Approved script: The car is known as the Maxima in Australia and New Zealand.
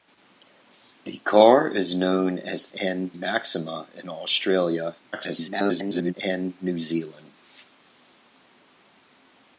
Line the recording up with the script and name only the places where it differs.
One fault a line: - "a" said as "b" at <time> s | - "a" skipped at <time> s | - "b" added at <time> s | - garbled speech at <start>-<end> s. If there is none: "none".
- "the" said as "and" at 2.8 s
- garbled speech at 5.1-6.1 s